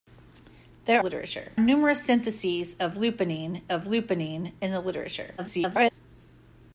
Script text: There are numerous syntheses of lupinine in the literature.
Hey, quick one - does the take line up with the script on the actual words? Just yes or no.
no